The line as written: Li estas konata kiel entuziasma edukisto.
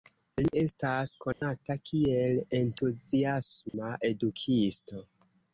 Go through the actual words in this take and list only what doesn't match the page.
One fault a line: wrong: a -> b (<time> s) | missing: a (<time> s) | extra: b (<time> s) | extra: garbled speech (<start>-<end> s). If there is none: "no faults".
no faults